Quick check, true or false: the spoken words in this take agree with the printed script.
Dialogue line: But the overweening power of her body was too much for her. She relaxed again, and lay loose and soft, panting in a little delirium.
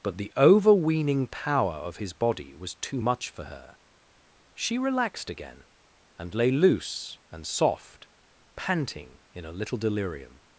false